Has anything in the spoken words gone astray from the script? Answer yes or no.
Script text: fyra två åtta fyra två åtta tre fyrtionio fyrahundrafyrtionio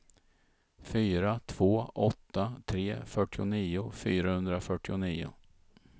yes